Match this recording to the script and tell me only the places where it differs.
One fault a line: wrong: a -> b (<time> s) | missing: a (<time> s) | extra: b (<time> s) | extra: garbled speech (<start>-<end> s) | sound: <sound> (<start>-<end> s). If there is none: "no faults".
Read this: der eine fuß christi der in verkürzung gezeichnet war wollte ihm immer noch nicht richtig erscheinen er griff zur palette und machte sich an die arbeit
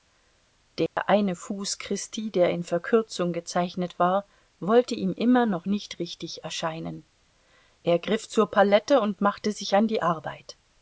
sound: dropout (0.9-1.0 s)